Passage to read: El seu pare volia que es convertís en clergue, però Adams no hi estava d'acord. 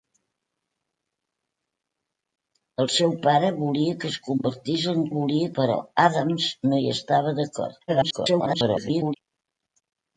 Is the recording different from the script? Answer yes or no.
yes